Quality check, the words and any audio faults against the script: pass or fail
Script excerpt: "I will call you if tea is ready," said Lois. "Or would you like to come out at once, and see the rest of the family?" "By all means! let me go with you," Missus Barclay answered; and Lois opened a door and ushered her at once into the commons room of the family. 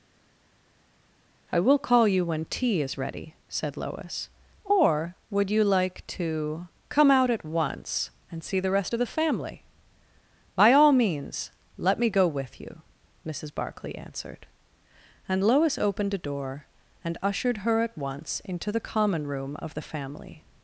fail